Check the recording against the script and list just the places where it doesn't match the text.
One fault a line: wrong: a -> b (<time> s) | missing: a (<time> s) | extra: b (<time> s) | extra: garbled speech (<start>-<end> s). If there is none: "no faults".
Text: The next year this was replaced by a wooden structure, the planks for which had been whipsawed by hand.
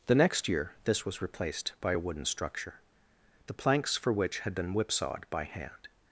no faults